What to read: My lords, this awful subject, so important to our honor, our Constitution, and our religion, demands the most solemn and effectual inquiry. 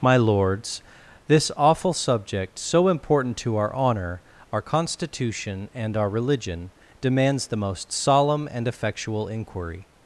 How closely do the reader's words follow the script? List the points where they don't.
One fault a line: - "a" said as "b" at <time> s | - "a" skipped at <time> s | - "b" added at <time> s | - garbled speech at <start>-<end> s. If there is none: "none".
none